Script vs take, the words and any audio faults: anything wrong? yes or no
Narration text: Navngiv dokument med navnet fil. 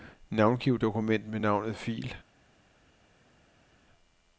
no